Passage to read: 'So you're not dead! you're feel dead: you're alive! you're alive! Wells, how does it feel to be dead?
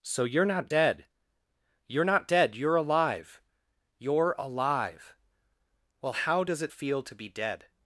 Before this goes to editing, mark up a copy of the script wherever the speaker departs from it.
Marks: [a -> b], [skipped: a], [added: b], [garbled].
'So you're not dead! you're [feel -> not] dead: you're alive! you're alive! [Wells, -> Well] how does it feel to be dead?